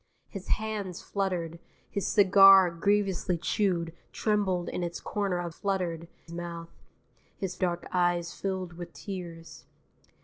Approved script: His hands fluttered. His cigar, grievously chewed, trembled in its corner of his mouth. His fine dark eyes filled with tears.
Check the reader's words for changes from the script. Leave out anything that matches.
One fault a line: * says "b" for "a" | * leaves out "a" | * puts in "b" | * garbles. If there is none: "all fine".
* says "fluttered" for "his"
* leaves out "fine"